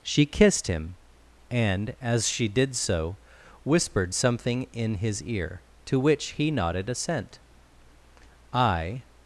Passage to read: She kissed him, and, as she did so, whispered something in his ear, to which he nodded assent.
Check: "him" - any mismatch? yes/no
no